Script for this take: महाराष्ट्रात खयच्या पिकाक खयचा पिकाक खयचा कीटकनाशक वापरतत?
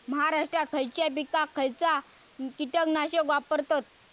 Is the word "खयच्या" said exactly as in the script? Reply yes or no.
yes